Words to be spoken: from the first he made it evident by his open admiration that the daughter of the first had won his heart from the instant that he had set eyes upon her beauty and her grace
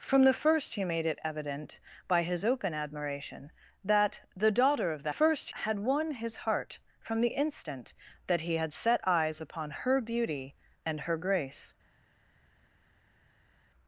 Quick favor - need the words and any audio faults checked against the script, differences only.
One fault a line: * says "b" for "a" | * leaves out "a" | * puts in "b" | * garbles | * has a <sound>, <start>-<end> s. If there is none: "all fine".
all fine